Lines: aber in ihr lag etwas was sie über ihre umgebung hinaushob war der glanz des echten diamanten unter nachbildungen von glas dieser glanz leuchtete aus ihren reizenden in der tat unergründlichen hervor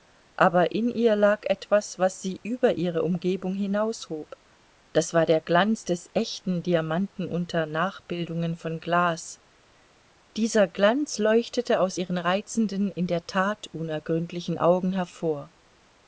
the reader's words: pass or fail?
fail